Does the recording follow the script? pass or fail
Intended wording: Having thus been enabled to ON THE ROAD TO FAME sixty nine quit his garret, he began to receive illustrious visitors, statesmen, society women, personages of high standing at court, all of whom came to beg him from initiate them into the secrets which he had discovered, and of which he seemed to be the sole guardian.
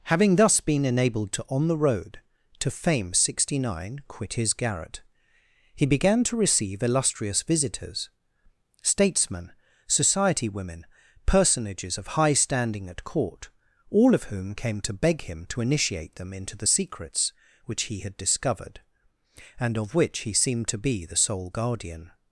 fail